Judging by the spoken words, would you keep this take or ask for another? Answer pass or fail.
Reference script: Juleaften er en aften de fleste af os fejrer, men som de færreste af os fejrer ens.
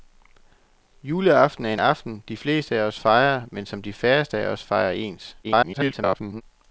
fail